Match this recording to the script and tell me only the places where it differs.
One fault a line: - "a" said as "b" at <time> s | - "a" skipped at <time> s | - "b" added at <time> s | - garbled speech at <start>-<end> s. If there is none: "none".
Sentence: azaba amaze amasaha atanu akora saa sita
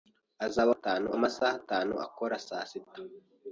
- "amaze" said as "atanu" at 0.7 s